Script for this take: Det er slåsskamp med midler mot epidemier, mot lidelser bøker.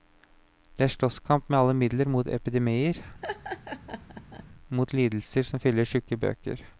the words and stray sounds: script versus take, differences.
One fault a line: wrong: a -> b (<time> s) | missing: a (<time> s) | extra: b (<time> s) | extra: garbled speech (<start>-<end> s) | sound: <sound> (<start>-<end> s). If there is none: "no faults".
extra: alle (1.6 s)
sound: laugh (3.2-4.5 s)
extra: som fyller tjukke (5.5 s)